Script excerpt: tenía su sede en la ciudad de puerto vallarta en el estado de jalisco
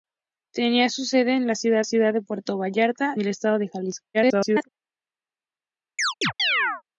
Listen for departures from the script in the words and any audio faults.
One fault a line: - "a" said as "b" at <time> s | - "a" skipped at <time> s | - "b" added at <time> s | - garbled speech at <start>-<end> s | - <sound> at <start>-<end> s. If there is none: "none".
- "ciudad" added at 1.8 s
- "en" skipped at 3.1 s
- garbled speech at 4.1-4.7 s
- chirp at 6.0-6.8 s